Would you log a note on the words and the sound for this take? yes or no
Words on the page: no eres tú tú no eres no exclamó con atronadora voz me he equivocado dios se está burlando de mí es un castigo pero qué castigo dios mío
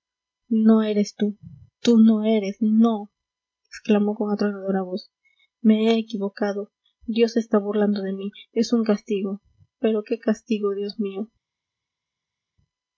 no